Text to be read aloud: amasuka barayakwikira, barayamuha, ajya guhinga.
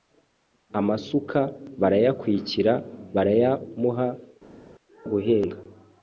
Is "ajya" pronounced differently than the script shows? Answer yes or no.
yes